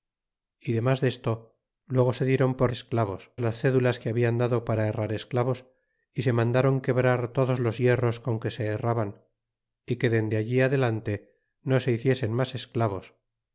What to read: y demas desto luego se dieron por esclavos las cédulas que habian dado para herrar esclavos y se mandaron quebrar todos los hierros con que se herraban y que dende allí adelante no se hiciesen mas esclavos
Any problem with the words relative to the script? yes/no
no